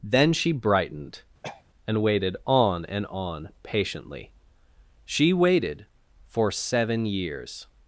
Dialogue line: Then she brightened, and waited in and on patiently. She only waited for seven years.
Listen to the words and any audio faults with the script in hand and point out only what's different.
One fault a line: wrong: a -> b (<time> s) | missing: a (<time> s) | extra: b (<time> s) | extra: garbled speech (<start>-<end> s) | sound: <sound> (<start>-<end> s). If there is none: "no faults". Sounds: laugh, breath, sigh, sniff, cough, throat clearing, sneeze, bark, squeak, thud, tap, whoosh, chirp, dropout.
sound: throat clearing (1.4-1.6 s)
wrong: in -> on (2.4 s)
missing: only (5.3 s)